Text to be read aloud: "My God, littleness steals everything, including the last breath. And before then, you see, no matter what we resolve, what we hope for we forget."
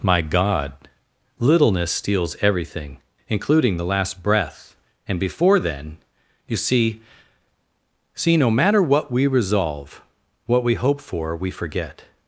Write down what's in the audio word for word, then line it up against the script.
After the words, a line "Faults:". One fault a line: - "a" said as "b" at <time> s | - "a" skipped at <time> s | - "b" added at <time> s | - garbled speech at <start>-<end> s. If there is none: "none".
"My God, littleness steals everything, including the last breath. And before then, you see see, no matter what we resolve, what we hope for we forget."
Faults:
- "see" added at 8.1 s